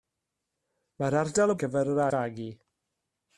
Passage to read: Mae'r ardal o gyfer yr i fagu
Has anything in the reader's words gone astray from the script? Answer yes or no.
no